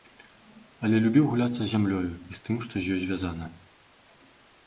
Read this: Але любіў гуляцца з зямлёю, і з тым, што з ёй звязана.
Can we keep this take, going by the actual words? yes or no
yes